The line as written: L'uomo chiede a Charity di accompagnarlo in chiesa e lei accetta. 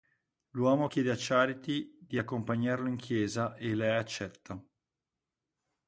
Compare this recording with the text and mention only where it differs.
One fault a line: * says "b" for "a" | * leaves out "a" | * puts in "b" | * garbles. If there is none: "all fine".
all fine